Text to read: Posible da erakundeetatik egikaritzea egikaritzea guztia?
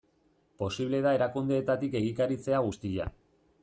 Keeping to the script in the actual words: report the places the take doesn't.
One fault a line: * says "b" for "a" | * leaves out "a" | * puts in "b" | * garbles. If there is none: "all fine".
* leaves out "egikaritzea"